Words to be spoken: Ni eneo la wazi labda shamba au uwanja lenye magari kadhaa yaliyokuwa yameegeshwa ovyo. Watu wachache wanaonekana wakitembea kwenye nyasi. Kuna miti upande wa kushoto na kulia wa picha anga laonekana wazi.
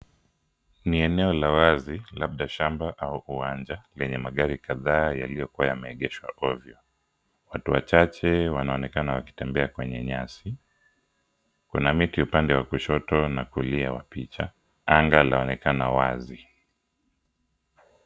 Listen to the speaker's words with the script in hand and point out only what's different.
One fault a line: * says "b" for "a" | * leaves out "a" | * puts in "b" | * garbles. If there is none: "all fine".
all fine